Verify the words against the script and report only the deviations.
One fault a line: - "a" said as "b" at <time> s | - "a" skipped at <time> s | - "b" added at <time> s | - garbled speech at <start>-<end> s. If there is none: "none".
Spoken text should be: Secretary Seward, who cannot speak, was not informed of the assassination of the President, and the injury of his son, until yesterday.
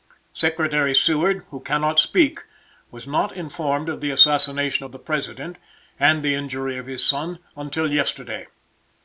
none